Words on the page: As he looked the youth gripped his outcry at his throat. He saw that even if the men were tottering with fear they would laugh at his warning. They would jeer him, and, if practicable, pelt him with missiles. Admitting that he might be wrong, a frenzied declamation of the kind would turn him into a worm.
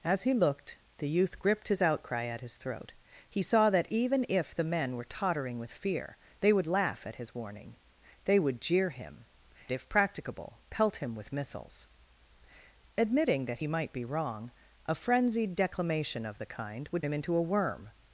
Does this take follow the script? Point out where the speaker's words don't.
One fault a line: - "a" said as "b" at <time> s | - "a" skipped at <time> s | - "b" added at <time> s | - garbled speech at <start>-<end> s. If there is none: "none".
- "and" skipped at 9.2 s
- "turn" skipped at 17.0 s